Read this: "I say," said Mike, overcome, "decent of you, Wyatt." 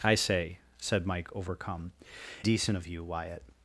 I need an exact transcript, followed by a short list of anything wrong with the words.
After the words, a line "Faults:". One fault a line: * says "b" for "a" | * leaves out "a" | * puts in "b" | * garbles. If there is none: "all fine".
"I say," said Mike, overcome, "decent of you, Wyatt."
Faults:
all fine